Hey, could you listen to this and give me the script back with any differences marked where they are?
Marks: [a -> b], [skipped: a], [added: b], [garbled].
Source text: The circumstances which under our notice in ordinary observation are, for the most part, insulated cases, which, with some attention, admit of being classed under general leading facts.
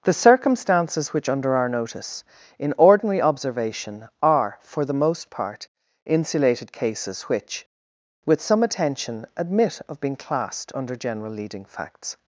The circumstances which under our notice in ordinary observation are, for the most part, insulated cases, which, with some attention, admit of being classed under general leading facts.